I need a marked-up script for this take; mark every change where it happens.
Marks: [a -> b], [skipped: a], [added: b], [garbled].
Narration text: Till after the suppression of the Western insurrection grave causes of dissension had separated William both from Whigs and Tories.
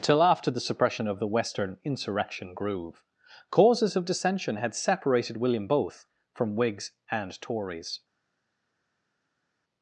Till after the suppression of the Western insurrection [grave -> groove] causes of dissension had separated William both from Whigs and Tories.